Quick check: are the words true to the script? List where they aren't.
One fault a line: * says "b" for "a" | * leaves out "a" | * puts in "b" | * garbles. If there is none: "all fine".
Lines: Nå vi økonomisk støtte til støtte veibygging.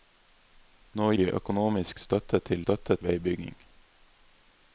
all fine